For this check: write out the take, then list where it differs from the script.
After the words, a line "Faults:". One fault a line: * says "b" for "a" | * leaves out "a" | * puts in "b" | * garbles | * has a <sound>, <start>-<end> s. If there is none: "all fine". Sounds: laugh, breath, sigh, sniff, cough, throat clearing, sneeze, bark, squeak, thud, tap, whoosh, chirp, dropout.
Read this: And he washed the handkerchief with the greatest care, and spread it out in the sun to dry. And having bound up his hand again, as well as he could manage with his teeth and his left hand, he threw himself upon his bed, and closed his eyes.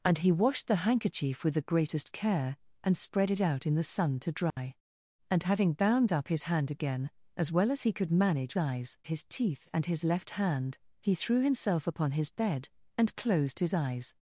And he washed the handkerchief with the greatest care, and spread it out in the sun to dry. And having bound up his hand again, as well as he could manage eyes his teeth and his left hand, he threw himself upon his bed, and closed his eyes.
Faults:
* has a dropout, 4.5-4.6 s
* says "eyes" for "with"